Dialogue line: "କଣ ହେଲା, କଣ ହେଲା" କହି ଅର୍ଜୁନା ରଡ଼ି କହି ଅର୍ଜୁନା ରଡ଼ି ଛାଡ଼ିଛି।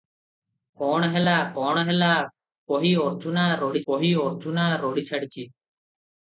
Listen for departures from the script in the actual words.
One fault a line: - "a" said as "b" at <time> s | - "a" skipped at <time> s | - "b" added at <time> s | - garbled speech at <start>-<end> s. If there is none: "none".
none